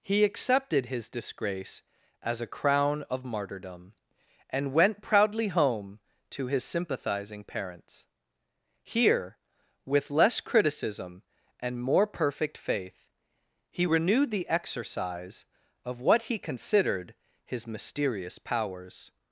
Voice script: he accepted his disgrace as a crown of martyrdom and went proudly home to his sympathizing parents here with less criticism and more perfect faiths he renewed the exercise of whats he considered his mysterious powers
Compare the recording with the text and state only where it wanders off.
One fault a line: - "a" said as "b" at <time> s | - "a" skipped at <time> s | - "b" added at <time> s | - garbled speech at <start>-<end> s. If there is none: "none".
- "faiths" said as "faith" at 12.6 s
- "whats" said as "what" at 16.0 s